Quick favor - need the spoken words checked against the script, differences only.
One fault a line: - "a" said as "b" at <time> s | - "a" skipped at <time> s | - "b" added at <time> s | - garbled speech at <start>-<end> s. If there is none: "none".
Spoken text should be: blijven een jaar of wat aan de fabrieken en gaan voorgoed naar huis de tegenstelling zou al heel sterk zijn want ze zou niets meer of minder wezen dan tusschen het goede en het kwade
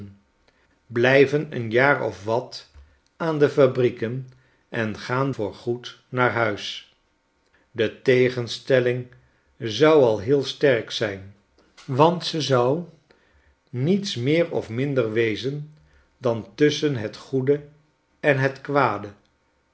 none